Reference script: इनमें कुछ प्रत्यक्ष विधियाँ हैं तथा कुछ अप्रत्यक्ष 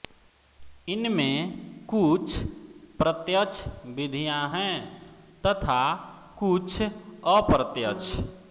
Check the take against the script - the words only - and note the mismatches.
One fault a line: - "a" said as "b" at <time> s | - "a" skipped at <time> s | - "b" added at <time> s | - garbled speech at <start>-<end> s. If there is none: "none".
none